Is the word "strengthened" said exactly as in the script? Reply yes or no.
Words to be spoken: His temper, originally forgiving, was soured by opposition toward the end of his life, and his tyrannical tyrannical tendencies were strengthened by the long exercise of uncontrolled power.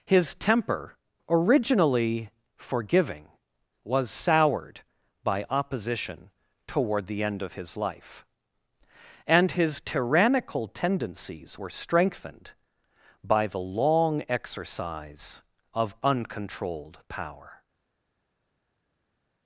yes